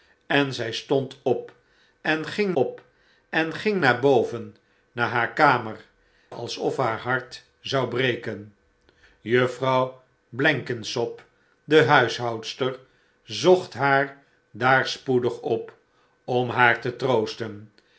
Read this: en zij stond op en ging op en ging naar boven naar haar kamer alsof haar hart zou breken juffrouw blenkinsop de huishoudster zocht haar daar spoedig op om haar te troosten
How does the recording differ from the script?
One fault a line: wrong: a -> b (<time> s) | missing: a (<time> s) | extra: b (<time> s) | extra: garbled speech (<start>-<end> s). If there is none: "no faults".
no faults